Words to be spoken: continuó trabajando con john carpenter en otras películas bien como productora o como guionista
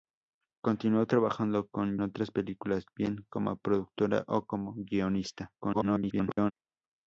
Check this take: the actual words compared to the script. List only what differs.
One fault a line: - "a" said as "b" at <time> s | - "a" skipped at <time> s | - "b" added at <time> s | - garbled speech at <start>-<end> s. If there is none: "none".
- "john carpenter en" skipped at 2.0 s
- garbled speech at 5.6-6.5 s